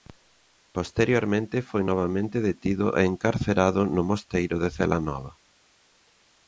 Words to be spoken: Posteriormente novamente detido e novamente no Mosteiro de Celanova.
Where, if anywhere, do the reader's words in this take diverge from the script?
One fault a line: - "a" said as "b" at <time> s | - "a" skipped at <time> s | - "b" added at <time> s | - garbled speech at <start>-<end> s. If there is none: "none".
- "foi" added at 1.7 s
- "novamente" said as "encarcerado" at 3.1 s